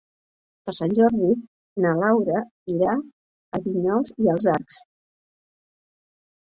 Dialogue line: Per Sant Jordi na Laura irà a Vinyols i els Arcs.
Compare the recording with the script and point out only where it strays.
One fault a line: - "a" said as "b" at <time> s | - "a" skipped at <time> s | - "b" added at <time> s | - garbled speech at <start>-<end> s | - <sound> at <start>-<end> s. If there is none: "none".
none